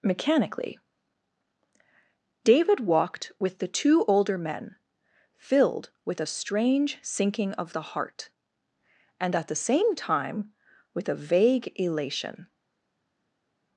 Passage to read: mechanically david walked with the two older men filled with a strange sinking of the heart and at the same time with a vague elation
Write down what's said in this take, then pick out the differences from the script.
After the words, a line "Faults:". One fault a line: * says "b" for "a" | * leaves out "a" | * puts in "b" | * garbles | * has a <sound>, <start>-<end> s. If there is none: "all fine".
mechanically david walked with the two older men filled with a strange sinking of the heart and at the same time with a vague elation
Faults:
all fine